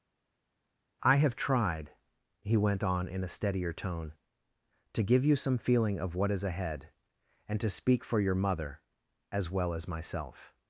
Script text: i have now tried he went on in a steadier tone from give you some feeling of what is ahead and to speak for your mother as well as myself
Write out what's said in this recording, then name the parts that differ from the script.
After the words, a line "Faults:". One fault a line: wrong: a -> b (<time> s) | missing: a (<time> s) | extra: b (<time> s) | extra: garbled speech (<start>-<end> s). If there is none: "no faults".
i have tried he went on in a steadier tone to give you some feeling of what is ahead and to speak for your mother as well as myself
Faults:
missing: now (1.3 s)
wrong: from -> to (4.9 s)